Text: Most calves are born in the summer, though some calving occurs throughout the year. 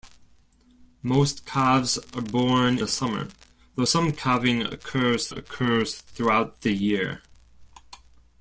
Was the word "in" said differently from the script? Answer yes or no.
yes